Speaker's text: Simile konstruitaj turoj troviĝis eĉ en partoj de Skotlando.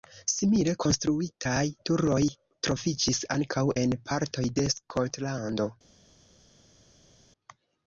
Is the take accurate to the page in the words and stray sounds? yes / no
no